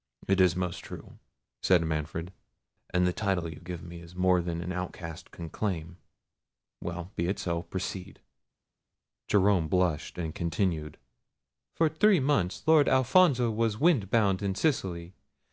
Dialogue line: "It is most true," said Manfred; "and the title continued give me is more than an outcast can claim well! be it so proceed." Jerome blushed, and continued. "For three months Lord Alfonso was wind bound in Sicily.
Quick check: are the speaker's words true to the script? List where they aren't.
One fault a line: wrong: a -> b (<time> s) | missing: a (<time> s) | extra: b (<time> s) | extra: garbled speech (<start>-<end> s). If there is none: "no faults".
wrong: continued -> you (3.5 s)